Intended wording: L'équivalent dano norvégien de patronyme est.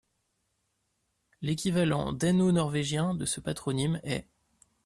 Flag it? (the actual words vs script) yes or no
yes